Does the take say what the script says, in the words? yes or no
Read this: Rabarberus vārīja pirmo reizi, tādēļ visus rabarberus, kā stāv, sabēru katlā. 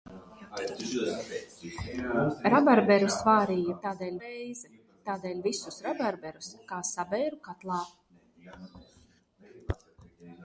no